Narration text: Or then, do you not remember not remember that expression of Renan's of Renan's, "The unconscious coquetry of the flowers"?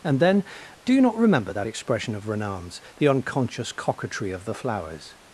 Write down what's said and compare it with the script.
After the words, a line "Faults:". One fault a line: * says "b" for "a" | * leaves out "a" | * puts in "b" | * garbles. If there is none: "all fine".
And then, do you not remember that expression of Renan's, "The unconscious coquetry of the flowers"?
Faults:
* says "And" for "Or"
* leaves out "not remember"
* leaves out "of Renan's"